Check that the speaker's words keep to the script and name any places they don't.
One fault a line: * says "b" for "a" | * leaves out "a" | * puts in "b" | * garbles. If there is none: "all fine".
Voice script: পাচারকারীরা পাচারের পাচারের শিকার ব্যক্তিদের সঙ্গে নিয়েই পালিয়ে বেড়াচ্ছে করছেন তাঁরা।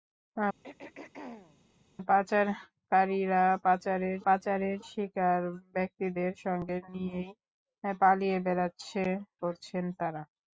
all fine